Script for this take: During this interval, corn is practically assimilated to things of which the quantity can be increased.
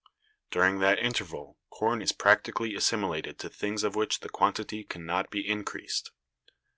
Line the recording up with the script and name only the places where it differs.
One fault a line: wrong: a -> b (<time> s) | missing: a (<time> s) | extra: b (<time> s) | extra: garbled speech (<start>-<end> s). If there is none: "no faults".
wrong: this -> that (0.8 s)
extra: not (5.0 s)